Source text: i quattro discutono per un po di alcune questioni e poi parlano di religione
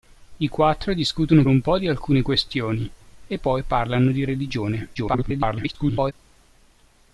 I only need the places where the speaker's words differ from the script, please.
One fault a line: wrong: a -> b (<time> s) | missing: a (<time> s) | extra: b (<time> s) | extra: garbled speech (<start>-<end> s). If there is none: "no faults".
missing: per (1.4 s)
extra: garbled speech (4.9-6.1 s)